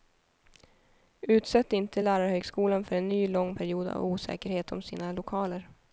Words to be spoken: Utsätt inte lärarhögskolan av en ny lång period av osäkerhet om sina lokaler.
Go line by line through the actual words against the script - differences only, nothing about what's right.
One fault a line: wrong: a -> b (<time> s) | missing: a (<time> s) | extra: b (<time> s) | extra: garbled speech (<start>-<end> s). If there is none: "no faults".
wrong: av -> för (2.8 s)